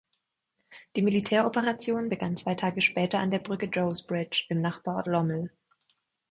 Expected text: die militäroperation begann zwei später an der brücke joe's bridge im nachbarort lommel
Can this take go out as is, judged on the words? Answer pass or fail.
fail